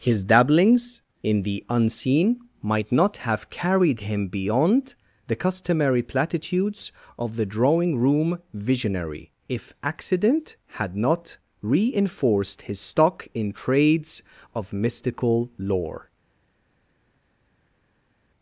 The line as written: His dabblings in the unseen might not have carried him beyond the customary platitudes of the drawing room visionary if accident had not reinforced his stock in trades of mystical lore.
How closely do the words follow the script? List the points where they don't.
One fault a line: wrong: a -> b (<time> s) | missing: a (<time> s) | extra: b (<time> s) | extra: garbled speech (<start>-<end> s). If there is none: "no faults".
no faults